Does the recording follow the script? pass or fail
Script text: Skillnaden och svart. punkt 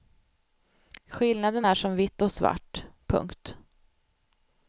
fail